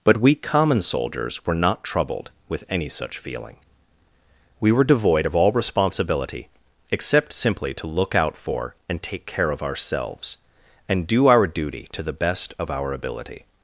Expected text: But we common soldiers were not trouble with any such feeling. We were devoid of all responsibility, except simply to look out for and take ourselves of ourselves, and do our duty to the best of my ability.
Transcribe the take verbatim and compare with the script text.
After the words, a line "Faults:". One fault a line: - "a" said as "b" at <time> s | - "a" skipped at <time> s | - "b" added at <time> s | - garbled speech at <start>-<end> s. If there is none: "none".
But we common soldiers were not troubled with any such feeling. We were devoid of all responsibility, except simply to look out for and take care of ourselves, and do our duty to the best of our ability.
Faults:
- "trouble" said as "troubled" at 1.8 s
- "ourselves" said as "care" at 9.3 s
- "my" said as "our" at 12.7 s